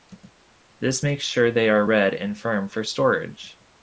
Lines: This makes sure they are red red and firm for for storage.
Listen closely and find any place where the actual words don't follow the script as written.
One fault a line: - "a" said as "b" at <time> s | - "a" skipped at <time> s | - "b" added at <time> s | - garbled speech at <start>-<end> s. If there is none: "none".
- "red" skipped at 2.1 s
- "for" skipped at 2.8 s